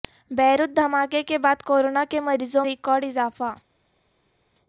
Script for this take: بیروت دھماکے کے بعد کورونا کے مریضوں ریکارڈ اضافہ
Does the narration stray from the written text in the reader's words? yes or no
no